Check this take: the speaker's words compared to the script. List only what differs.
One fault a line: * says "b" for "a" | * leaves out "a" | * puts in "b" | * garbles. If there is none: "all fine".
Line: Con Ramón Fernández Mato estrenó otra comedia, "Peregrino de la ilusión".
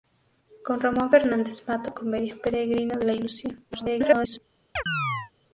* leaves out "estrenó otra"
* garbles